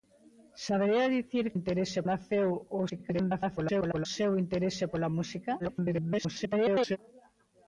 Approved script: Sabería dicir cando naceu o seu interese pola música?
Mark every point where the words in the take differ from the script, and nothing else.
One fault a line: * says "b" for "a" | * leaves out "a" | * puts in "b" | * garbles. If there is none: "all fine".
* says "interese" for "cando"
* garbles
* garbles